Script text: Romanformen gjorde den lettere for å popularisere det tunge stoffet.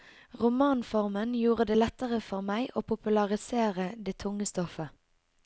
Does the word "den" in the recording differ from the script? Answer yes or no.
yes